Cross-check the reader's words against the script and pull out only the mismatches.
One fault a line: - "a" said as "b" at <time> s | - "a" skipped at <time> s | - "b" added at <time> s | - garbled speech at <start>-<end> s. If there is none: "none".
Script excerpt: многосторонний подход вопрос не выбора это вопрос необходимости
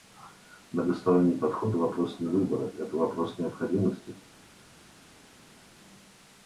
none